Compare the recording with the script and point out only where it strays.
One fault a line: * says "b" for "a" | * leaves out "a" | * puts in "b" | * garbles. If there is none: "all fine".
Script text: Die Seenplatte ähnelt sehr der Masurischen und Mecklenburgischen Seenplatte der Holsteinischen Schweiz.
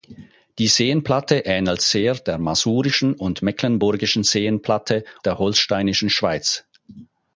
all fine